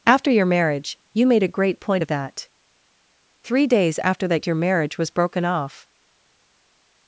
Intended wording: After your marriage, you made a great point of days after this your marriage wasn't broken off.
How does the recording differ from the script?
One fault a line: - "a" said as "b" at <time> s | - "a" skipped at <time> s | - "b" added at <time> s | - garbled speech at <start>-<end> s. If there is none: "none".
- "that Three" added at 2.1 s
- "this" said as "that" at 4.3 s
- "wasn't" said as "was" at 5.0 s